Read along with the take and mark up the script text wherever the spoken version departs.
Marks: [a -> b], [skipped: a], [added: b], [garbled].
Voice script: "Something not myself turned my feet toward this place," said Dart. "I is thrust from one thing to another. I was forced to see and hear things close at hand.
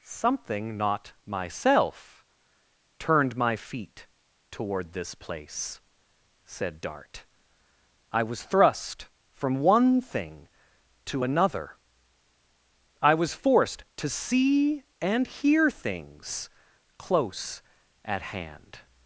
"Something not myself turned my feet toward this place," said Dart. "I [is -> was] thrust from one thing to another. I was forced to see and hear things close at hand.